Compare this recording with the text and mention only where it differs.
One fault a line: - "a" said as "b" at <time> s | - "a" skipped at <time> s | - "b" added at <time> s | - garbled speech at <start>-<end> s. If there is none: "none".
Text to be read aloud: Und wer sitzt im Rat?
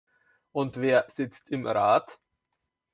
none